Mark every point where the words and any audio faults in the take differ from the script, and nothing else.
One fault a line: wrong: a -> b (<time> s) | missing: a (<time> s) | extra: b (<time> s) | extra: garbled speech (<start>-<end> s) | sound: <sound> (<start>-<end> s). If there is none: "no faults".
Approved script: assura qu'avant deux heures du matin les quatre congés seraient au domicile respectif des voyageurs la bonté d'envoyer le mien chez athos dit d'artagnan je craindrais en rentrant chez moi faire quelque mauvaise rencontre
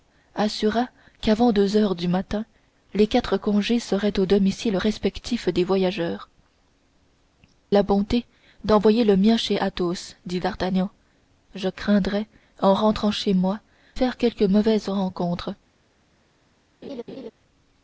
sound: laugh (16.8-17.3 s)